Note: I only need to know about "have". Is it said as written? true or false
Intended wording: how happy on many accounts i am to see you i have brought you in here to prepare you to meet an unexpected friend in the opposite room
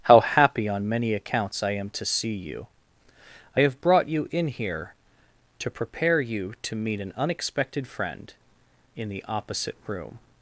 true